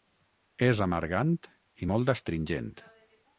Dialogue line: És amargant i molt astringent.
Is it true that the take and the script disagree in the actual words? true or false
false